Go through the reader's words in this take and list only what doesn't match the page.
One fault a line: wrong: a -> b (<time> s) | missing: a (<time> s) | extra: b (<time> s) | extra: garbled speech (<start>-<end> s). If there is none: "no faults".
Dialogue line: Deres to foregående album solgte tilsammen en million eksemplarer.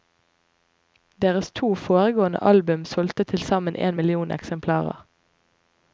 no faults